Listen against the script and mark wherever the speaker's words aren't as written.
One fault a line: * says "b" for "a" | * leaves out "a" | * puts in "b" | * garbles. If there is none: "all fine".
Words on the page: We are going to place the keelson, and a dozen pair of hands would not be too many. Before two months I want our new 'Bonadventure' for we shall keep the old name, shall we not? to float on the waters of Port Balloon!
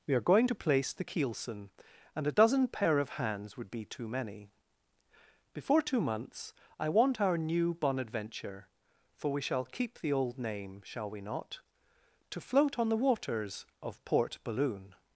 * leaves out "not"